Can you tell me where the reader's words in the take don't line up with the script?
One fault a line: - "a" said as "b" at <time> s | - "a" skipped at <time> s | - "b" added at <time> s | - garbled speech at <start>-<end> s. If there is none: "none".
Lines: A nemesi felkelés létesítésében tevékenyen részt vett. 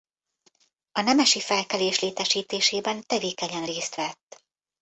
none